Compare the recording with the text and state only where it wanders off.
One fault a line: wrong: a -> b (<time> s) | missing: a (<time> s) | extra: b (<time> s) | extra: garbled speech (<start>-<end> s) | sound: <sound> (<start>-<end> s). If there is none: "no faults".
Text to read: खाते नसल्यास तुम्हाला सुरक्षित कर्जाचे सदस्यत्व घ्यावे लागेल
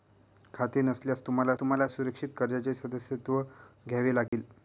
extra: तुम्हाला (1.6 s)
sound: dropout (4.3-4.3 s)